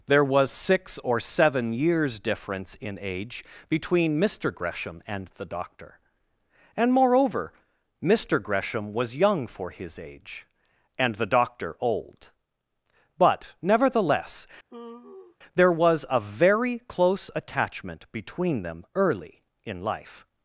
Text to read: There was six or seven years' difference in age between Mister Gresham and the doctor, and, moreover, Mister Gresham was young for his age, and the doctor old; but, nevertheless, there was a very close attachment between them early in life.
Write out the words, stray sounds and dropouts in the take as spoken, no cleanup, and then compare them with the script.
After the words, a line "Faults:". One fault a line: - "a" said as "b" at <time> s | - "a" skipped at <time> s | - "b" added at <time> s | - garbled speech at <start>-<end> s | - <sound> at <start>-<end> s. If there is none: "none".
There was six or seven years' difference in age between Mister Gresham and the doctor, and, moreover, Mister Gresham was young for his age, and the doctor old; but, nevertheless, there was a very close attachment between them early in life.
Faults:
- sigh at 14.7-15.4 s